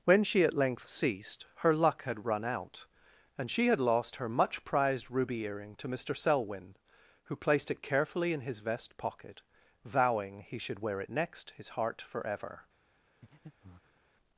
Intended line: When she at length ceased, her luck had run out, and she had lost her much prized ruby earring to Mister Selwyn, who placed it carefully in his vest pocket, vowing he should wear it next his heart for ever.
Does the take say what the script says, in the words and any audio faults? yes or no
no